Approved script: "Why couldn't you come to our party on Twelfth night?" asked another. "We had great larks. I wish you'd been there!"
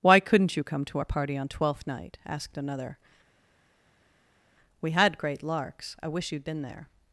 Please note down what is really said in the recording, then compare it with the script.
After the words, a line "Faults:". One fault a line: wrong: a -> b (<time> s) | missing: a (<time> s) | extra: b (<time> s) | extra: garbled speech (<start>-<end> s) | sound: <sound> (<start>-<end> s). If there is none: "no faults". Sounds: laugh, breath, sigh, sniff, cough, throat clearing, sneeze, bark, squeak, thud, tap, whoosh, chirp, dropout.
"Why couldn't you come to our party on Twelfth night?" asked another. "We had great larks. I wish you'd been there!"
Faults:
no faults